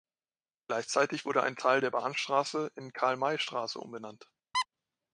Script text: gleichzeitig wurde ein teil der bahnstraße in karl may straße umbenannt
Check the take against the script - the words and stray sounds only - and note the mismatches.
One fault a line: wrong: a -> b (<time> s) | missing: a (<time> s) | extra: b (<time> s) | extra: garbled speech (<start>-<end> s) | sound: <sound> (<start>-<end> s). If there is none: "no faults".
sound: squeak (4.5-4.7 s)